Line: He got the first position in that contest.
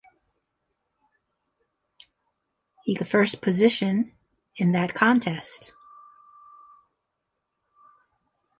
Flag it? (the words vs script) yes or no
yes